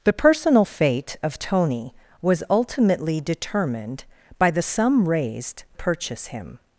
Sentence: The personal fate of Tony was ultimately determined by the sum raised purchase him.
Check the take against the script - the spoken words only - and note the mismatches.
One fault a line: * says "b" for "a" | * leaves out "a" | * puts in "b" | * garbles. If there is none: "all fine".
all fine